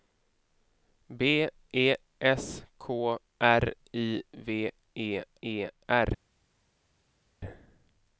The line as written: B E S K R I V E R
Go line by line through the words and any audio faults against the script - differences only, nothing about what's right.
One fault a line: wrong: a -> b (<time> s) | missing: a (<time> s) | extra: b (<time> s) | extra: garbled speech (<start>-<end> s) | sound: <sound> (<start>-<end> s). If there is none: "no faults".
extra: E (5.4 s)